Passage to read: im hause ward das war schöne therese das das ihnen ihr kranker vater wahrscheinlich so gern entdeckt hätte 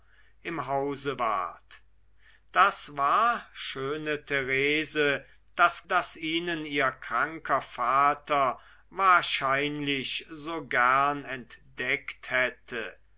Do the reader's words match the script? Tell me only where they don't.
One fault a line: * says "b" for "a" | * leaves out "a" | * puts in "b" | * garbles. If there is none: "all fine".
all fine